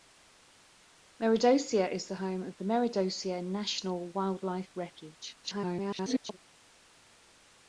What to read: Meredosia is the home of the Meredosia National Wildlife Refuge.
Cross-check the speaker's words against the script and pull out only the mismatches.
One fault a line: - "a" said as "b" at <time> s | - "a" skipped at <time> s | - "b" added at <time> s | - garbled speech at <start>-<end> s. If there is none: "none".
- garbled speech at 5.4-6.4 s